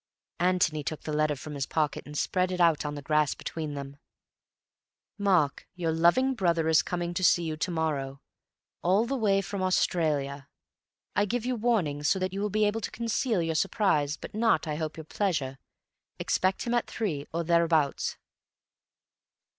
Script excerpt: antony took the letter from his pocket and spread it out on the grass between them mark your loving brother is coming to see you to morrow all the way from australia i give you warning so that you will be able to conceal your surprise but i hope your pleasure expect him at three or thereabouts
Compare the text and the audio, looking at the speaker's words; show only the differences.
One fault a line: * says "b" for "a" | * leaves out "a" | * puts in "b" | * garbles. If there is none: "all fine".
* puts in "not"